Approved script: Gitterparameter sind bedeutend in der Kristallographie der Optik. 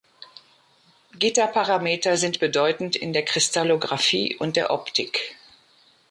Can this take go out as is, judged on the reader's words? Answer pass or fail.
fail